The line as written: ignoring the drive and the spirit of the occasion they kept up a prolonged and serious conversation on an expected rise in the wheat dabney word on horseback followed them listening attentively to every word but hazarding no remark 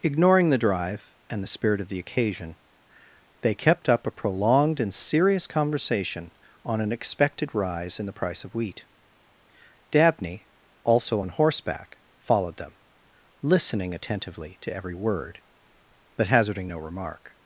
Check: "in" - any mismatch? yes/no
no